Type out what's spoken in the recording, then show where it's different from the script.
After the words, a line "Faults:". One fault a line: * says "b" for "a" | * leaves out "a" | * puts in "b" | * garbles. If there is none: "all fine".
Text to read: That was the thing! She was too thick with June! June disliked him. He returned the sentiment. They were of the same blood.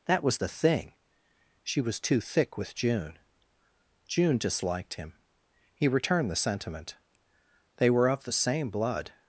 That was the thing! She was too thick with June! June disliked him. He returned the sentiment. They were of the same blood.
Faults:
all fine